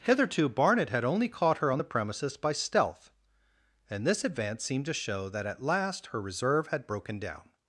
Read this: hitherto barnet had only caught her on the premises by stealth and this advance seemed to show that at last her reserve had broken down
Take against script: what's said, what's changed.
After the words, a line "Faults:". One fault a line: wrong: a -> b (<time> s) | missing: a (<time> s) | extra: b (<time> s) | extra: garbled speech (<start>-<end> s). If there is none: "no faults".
hitherto barnet had only caught her on the premises by stealth and this advance seemed to show that at last her reserve had broken down
Faults:
no faults